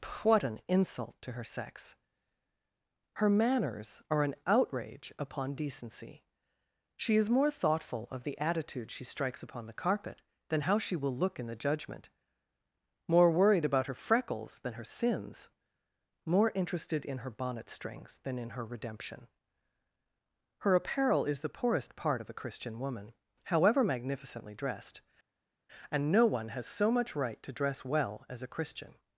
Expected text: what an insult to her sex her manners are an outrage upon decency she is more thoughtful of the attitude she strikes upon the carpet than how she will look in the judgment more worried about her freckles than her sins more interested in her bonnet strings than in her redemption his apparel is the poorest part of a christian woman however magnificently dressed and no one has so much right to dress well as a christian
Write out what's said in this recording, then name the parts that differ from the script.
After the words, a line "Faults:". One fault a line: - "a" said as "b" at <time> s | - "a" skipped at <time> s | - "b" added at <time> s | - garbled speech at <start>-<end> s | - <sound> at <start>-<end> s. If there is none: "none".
what an insult to her sex her manners are an outrage upon decency she is more thoughtful of the attitude she strikes upon the carpet than how she will look in the judgment more worried about her freckles than her sins more interested in her bonnet strings than in her redemption her apparel is the poorest part of a christian woman however magnificently dressed and no one has so much right to dress well as a christian
Faults:
- "his" said as "her" at 20.6 s